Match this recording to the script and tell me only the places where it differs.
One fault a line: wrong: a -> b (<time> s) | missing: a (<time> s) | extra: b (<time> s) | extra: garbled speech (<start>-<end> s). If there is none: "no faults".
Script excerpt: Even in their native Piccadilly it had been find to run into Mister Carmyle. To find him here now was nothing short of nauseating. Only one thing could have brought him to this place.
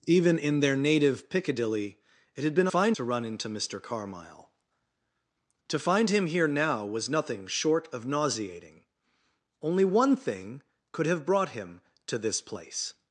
no faults